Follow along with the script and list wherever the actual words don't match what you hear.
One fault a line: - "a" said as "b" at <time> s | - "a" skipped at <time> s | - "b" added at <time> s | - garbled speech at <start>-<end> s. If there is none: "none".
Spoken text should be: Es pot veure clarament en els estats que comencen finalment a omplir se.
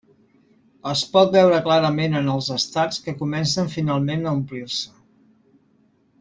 none